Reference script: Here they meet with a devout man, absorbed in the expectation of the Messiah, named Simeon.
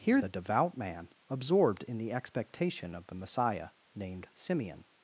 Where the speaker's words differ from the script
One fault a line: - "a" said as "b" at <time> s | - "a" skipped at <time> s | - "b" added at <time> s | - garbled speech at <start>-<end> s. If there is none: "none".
- "they meet with" skipped at 0.2 s